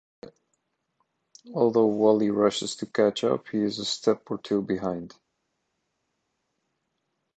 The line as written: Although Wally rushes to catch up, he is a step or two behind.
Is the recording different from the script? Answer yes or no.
no